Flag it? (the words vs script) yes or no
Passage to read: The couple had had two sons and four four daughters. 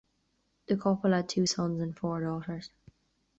yes